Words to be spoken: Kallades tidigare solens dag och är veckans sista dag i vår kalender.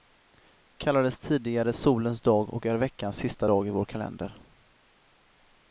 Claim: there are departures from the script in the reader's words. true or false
false